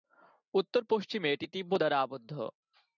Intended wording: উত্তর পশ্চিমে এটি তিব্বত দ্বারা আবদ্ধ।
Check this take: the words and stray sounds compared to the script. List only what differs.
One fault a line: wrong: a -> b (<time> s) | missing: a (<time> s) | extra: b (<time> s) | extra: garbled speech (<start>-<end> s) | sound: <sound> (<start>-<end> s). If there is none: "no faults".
no faults